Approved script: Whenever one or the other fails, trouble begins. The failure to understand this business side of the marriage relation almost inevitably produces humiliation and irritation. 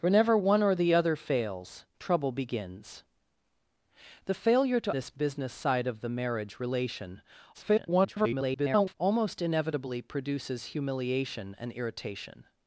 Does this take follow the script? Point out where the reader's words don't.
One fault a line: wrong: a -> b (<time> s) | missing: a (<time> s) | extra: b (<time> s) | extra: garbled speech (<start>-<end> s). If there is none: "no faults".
missing: understand (5.0 s)
extra: garbled speech (7.5-8.9 s)